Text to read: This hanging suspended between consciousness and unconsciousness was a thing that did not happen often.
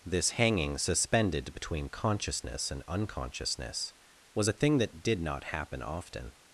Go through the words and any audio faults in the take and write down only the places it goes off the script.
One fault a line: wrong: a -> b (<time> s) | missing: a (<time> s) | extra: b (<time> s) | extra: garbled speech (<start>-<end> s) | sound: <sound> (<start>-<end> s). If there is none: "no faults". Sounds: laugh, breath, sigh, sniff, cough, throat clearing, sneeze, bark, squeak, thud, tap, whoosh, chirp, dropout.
no faults